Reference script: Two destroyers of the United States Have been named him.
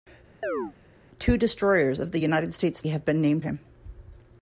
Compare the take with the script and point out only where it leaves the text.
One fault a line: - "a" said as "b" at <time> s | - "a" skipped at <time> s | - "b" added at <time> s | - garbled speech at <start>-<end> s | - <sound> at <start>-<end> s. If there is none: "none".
- chirp at 0.4-0.7 s